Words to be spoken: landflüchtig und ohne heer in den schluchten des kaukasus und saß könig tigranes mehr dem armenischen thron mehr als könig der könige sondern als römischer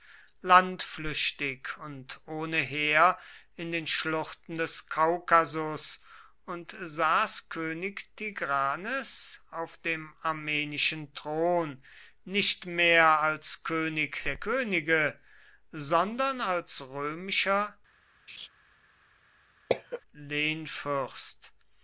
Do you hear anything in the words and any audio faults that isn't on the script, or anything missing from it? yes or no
yes